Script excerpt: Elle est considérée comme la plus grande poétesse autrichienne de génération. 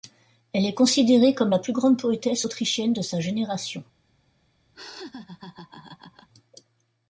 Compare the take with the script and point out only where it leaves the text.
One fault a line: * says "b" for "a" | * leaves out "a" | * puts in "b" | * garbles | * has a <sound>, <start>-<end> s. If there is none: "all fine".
* puts in "sa"
* has a laugh, 4.7-6.3 s